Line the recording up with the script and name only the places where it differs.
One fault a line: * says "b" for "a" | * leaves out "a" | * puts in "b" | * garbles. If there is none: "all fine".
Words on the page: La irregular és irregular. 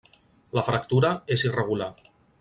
* says "fractura" for "irregular"